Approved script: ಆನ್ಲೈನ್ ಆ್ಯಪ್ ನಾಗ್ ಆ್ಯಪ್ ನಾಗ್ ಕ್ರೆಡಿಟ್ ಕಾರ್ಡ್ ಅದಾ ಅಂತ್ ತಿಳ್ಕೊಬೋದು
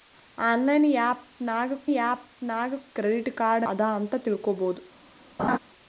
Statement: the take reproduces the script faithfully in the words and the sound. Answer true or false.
false